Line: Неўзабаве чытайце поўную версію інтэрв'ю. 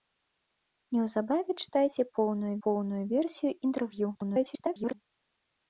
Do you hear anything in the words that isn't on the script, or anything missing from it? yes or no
yes